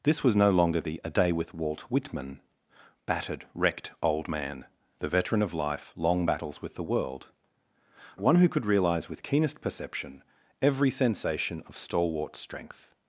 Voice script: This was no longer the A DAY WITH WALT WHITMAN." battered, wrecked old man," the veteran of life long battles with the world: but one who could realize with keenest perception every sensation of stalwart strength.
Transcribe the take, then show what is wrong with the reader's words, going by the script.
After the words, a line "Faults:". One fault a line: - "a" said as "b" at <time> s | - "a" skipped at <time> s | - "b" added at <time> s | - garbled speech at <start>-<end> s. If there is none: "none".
This was no longer the A DAY WITH WALT WHITMAN." battered, wrecked old man," the veteran of life long battles with the world: one who could realize with keenest perception every sensation of stalwart strength.
Faults:
- "but" skipped at 7.3 s